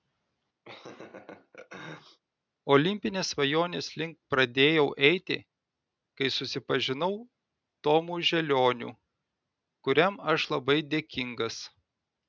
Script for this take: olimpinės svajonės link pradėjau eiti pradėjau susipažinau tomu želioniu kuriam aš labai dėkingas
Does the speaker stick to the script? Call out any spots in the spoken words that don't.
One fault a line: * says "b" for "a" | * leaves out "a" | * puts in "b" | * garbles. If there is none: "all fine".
* says "kai" for "pradėjau"